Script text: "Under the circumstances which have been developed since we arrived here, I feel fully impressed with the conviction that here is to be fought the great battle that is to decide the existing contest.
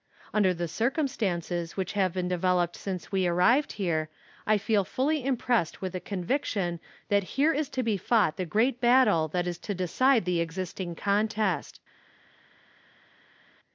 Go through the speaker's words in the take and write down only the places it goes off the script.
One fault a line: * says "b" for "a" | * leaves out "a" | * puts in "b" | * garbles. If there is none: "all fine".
all fine